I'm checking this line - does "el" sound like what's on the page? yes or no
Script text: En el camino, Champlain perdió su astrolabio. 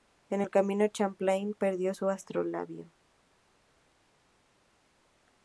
yes